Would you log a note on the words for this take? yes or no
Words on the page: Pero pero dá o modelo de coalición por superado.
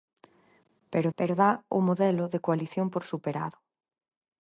no